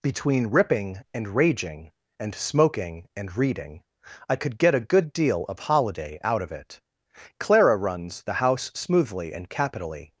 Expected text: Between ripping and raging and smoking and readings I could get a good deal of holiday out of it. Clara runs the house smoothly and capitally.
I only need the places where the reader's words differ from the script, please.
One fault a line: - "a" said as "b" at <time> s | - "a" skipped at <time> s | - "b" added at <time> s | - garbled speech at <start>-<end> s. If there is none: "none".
- "readings" said as "reading" at 3.4 s